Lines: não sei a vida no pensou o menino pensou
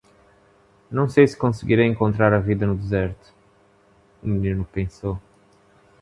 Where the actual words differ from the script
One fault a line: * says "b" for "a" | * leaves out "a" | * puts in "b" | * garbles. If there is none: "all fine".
* puts in "se conseguirei encontrar"
* says "deserto" for "pensou"